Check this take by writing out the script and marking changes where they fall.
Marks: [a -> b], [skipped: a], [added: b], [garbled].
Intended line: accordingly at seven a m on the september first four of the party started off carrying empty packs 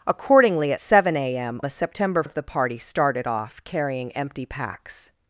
accordingly at seven a m [skipped: on] the september [skipped: first four] of the party started off carrying empty packs